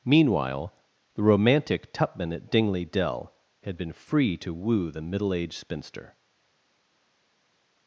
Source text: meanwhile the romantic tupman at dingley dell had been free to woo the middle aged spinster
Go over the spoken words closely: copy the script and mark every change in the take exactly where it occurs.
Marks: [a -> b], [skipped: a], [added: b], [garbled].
meanwhile the romantic tupman at dingley dell had been free to woo the middle aged spinster